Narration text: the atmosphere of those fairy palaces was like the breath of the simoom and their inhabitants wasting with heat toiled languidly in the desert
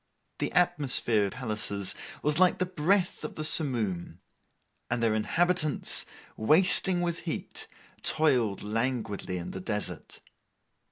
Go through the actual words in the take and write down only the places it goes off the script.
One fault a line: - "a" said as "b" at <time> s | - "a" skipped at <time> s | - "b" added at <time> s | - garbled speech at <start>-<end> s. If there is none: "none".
- "of those fairy" skipped at 1.3 s